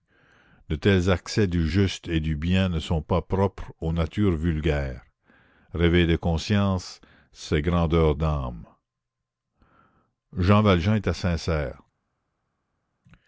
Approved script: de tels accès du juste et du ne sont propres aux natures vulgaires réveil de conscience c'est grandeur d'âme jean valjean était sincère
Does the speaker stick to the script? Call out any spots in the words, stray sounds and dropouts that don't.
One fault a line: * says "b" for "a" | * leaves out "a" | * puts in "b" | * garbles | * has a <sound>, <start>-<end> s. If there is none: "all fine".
* puts in "bien"
* puts in "pas"